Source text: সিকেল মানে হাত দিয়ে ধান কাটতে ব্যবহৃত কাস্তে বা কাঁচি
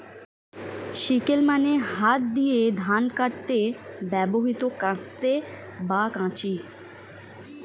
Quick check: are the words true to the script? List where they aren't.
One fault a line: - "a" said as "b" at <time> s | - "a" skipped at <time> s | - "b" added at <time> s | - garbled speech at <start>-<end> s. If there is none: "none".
none